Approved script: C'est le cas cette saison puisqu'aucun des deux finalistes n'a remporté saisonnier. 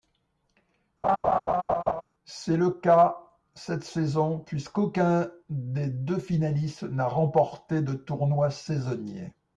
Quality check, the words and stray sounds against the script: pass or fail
fail